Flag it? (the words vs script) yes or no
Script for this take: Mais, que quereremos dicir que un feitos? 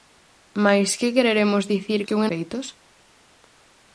no